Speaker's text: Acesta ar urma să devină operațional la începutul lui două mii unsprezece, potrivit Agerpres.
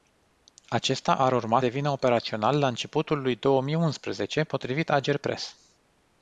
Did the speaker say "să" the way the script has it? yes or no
no